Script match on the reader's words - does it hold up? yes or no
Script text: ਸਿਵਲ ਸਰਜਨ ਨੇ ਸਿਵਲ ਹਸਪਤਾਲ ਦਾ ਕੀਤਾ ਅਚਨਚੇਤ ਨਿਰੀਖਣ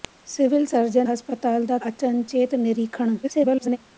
no